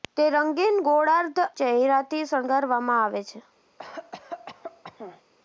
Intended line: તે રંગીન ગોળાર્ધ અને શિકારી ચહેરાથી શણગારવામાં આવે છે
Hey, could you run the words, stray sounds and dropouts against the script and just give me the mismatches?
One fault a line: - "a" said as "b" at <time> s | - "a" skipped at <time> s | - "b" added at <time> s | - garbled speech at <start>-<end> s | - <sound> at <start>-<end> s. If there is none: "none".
- "અને શિકારી" skipped at 1.4 s
- cough at 3.8-5.2 s